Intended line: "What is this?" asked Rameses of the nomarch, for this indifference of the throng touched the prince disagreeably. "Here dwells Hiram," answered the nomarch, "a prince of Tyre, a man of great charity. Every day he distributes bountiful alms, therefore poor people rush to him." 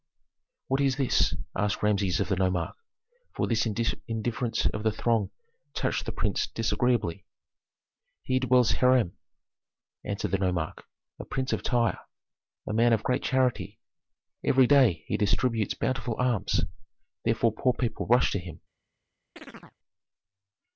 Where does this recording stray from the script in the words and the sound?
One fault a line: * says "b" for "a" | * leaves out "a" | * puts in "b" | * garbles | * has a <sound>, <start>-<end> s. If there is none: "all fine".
* has a chirp, 19.4-19.8 s